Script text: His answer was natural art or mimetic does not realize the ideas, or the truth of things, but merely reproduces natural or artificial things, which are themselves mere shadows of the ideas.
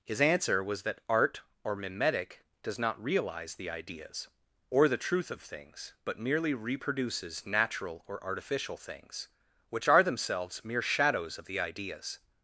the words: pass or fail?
fail